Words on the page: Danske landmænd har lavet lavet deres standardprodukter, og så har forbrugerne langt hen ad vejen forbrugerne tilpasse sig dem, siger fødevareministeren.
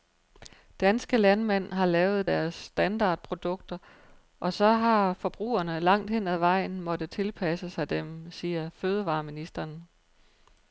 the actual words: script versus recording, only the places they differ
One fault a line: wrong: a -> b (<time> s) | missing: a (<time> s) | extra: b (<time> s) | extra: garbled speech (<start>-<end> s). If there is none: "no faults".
missing: lavet (2.3 s)
wrong: forbrugerne -> måttet (6.8 s)